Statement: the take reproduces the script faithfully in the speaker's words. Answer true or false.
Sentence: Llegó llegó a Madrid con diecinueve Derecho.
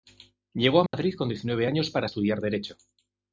false